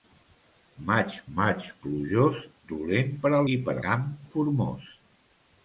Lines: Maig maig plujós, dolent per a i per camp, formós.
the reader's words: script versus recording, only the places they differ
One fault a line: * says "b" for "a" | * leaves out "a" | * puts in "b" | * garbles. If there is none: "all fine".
all fine